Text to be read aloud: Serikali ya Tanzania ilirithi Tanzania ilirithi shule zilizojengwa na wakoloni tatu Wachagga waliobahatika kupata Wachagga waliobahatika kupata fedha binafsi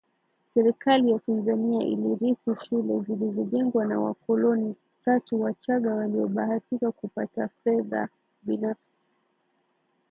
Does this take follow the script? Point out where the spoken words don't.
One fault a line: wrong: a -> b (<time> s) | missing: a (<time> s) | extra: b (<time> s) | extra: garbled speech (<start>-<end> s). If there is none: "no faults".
missing: Tanzania ilirithi (2.5 s)
missing: Wachagga waliobahatika kupata (7.5 s)